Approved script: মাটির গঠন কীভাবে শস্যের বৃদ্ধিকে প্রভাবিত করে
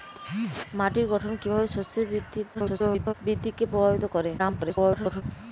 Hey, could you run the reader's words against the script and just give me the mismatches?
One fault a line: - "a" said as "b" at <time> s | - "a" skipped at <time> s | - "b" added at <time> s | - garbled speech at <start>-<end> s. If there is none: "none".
- garbled speech at 2.5-3.1 s
- garbled speech at 4.4-5.2 s